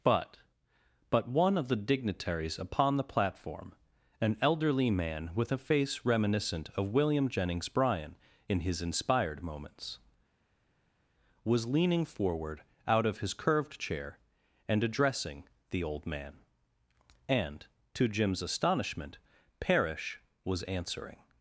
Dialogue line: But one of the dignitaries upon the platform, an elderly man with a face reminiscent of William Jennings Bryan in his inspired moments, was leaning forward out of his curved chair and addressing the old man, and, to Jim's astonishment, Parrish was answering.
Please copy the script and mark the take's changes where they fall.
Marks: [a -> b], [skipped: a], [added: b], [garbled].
But [added: but] one of the dignitaries upon the platform, an elderly man with a face reminiscent of William Jennings Bryan in his inspired moments, was leaning forward out of his curved chair and addressing the old man, and, to Jim's astonishment, Parrish was answering.